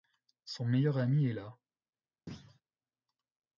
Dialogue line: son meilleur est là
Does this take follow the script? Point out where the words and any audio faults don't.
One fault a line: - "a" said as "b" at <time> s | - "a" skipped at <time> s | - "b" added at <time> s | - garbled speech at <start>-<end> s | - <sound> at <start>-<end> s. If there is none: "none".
- "ami" added at 1.0 s
- thud at 2.3-2.6 s